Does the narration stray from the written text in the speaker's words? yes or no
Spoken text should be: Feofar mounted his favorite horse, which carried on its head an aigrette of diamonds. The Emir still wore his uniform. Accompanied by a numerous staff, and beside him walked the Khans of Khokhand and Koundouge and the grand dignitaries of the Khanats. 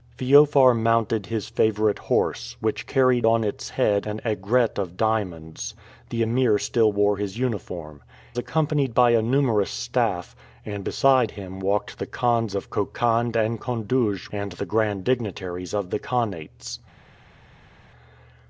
no